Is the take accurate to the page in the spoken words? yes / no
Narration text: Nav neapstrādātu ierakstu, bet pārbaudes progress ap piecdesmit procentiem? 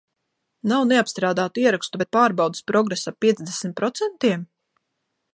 yes